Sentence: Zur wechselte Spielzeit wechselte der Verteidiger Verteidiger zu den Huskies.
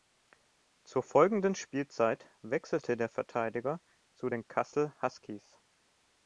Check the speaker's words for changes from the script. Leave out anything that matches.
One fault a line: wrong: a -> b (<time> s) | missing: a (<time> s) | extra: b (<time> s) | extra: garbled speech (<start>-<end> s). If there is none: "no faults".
wrong: wechselte -> folgenden (1.0 s)
missing: Verteidiger (3.8 s)
extra: Kassel (4.5 s)